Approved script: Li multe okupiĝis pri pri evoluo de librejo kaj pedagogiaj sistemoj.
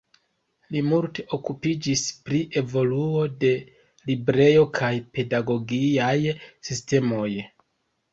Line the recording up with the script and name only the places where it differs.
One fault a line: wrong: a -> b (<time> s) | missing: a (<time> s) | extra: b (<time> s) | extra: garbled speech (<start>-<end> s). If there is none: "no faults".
missing: pri (2.4 s)